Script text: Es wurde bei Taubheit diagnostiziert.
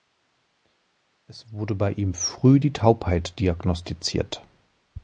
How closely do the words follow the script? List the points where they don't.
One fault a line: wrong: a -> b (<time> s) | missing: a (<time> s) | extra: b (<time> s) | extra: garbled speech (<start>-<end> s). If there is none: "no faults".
extra: ihm früh die (1.9 s)